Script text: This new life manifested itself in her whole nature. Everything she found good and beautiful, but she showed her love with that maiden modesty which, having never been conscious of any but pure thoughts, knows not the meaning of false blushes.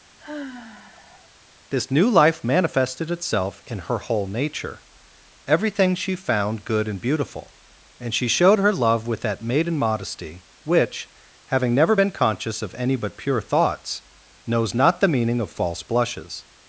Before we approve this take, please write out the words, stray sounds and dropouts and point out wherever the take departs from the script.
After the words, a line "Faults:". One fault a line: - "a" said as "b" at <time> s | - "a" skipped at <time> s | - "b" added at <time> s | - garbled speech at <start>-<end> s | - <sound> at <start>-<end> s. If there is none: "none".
This new life manifested itself in her whole nature. Everything she found good and beautiful, and she showed her love with that maiden modesty which, having never been conscious of any but pure thoughts, knows not the meaning of false blushes.
Faults:
- sigh at 0.2-1.3 s
- "but" said as "and" at 8.0 s